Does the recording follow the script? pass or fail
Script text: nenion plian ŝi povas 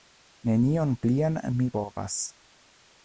fail